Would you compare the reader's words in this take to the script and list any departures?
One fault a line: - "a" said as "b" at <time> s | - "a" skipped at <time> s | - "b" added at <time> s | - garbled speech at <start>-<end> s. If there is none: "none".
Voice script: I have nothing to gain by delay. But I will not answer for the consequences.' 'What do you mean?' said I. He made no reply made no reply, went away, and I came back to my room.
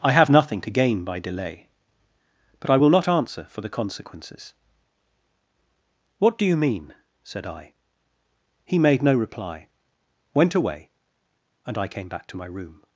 - "made no reply" skipped at 9.7 s